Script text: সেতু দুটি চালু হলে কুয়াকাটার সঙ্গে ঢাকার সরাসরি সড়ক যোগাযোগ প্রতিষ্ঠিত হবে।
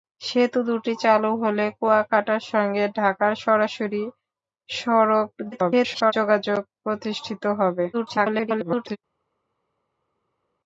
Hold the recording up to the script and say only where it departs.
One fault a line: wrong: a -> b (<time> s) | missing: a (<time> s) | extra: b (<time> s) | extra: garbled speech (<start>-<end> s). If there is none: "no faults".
extra: garbled speech (5.5-6.1 s)
extra: garbled speech (7.9-9.0 s)